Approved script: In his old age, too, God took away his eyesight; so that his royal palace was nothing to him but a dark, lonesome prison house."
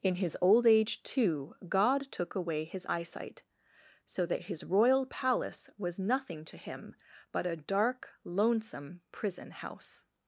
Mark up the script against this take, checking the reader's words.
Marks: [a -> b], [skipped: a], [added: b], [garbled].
In his old age, too, God took away his eyesight; so that his royal palace was nothing to him but a dark, lonesome prison house."